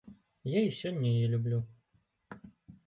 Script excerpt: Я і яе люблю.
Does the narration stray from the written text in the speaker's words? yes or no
yes